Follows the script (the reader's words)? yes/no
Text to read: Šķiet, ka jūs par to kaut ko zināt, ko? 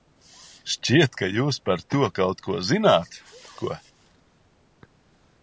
yes